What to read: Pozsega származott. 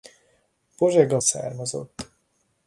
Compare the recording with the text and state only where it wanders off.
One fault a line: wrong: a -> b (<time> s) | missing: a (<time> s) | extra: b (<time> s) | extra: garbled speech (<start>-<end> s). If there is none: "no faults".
no faults